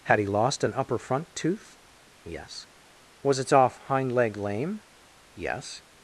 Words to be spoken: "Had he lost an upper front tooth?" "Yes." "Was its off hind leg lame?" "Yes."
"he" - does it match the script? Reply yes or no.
yes